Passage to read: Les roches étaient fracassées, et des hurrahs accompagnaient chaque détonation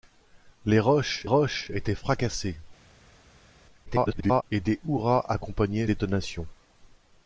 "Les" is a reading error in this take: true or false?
false